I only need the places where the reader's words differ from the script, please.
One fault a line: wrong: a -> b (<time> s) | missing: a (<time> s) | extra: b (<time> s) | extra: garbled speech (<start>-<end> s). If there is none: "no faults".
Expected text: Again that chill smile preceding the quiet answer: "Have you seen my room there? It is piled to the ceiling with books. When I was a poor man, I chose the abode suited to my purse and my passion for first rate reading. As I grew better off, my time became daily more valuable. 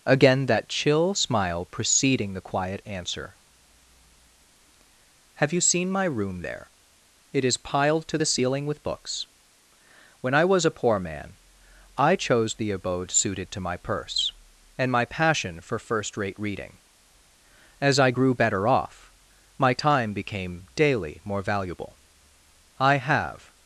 extra: I have (22.8 s)